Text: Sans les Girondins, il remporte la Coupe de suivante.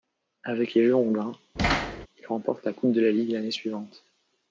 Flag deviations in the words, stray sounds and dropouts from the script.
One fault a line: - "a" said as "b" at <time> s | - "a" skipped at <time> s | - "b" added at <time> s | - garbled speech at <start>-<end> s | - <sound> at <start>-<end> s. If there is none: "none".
- "Sans" said as "Avec" at 0.4 s
- thud at 1.6-2.1 s
- "la Ligue l'année" added at 3.0 s